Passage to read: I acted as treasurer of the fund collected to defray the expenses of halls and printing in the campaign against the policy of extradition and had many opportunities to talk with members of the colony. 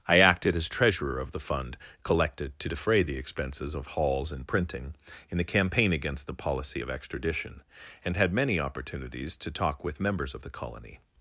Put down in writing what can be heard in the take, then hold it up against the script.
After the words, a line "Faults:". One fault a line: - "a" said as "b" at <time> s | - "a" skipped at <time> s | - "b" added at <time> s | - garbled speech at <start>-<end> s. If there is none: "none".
I acted as treasurer of the fund collected to defray the expenses of halls and printing in the campaign against the policy of extradition and had many opportunities to talk with members of the colony.
Faults:
none